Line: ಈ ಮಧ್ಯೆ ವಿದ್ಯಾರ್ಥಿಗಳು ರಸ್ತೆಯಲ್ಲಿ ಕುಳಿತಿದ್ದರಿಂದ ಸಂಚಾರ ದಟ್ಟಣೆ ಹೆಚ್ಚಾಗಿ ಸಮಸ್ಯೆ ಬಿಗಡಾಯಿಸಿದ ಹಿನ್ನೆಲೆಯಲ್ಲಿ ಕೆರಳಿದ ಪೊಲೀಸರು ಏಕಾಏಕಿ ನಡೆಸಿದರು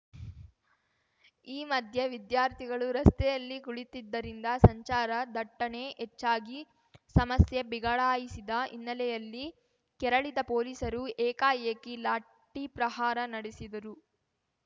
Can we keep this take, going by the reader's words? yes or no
no